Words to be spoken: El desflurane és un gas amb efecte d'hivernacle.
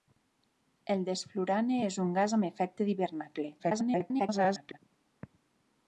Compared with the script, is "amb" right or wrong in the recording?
right